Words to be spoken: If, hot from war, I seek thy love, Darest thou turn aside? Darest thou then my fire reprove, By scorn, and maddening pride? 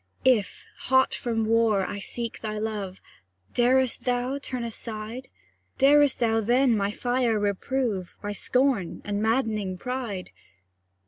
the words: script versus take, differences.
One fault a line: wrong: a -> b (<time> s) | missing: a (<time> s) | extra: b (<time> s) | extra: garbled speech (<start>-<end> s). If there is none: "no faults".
no faults